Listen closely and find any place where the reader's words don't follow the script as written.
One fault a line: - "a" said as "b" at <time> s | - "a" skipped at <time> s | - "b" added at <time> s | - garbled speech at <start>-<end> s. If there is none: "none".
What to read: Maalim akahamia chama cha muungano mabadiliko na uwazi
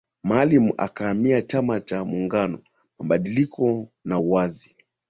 none